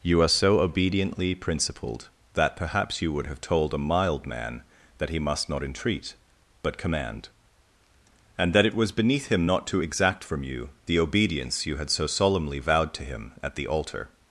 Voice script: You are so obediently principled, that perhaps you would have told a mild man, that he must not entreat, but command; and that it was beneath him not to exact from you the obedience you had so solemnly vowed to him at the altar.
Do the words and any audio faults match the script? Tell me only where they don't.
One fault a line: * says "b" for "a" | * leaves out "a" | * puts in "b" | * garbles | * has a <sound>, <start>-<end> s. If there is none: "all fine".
all fine